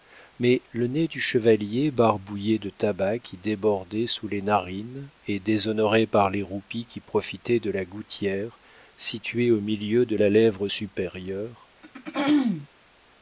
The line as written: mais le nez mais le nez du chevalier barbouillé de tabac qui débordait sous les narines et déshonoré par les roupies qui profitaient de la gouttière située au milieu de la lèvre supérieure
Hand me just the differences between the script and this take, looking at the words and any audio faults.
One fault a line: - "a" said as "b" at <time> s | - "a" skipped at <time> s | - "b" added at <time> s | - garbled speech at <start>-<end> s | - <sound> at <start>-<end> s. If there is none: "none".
- "mais le nez" skipped at 1.1 s
- throat clearing at 11.8-12.7 s